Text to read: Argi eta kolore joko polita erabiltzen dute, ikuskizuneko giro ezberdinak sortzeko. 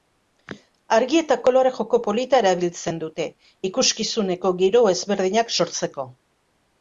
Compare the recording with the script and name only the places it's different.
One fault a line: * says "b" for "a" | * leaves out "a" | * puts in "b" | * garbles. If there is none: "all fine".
all fine